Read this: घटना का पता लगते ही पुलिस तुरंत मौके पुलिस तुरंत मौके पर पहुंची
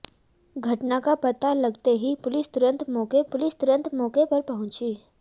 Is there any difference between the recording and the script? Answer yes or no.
no